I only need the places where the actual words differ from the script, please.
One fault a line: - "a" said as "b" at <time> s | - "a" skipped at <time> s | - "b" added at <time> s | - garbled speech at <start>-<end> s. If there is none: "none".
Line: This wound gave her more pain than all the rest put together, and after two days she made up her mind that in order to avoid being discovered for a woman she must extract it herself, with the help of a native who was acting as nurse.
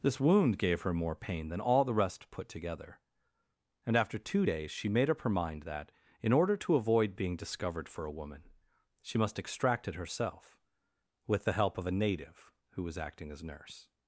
none